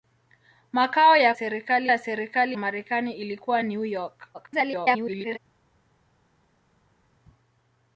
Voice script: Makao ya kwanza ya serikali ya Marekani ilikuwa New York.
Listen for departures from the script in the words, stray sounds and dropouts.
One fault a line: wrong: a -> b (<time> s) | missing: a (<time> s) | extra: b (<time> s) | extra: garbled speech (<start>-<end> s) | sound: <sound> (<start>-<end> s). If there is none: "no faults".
wrong: kwanza -> serikali (1.3 s)
missing: ya (2.6 s)
extra: garbled speech (4.3-5.4 s)